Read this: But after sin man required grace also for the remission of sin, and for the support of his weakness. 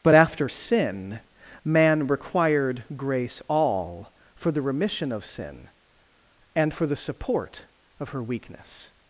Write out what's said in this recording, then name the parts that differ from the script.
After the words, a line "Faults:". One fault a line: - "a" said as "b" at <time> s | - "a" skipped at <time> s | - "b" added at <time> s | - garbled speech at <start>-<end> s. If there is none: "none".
But after sin man required grace all for the remission of sin, and for the support of her weakness.
Faults:
- "also" said as "all" at 3.5 s
- "his" said as "her" at 8.1 s